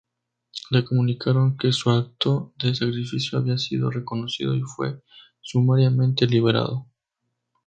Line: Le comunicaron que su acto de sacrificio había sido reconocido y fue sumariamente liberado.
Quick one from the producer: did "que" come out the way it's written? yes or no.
yes